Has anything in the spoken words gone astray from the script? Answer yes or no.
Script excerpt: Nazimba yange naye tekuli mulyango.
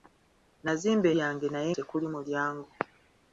no